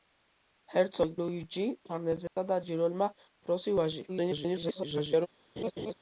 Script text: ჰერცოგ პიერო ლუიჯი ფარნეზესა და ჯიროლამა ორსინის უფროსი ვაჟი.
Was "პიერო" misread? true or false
true